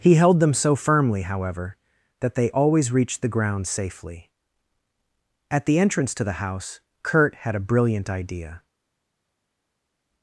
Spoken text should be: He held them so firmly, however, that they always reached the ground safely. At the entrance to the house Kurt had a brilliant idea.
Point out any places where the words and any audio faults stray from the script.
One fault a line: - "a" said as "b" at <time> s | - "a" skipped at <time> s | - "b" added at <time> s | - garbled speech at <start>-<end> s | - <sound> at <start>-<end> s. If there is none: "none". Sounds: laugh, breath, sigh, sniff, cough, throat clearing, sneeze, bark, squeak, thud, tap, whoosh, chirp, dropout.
none